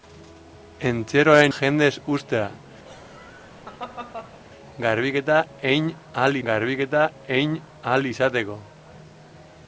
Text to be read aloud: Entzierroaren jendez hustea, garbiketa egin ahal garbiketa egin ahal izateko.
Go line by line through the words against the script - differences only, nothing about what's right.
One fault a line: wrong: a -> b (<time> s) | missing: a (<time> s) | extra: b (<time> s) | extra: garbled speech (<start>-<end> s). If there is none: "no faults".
no faults